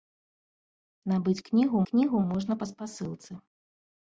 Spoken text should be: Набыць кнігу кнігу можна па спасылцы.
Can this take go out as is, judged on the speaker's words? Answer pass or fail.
pass